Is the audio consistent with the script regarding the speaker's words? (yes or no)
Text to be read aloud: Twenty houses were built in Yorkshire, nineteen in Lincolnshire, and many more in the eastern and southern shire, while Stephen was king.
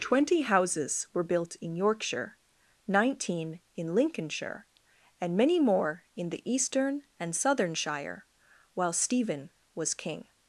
yes